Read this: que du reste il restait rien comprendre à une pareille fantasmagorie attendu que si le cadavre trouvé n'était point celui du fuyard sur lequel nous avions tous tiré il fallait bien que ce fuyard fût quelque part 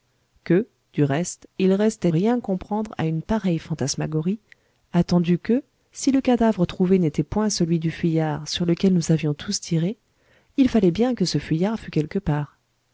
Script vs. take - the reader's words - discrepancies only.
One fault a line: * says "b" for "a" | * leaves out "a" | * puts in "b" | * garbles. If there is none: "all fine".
all fine